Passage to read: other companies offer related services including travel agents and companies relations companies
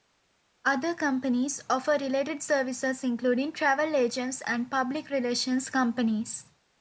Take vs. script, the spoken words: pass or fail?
fail